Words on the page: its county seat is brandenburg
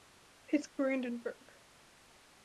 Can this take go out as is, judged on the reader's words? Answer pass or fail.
fail